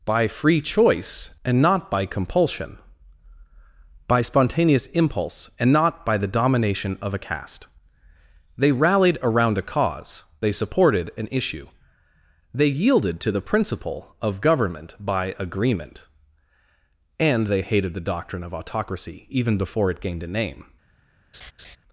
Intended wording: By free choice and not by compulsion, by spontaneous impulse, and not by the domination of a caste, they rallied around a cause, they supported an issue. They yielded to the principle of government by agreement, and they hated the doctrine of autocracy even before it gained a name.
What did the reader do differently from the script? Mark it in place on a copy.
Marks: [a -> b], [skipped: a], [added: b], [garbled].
By free choice and not by compulsion, by spontaneous impulse, and not by the domination of a caste, they rallied around a cause, they supported an issue. They yielded to the principle of government by agreement, and they hated the doctrine of autocracy even before it gained a name.